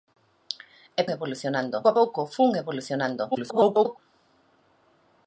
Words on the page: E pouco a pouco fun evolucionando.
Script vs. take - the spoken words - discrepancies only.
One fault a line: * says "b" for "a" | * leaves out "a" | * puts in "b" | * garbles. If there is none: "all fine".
* says "evolucionando" for "pouco"
* garbles